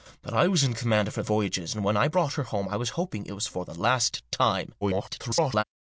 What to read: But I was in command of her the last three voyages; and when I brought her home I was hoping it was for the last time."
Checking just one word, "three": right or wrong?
wrong